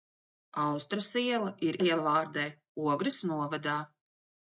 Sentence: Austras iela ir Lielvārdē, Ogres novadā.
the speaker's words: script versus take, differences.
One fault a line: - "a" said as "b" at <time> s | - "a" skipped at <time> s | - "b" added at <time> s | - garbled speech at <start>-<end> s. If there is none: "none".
none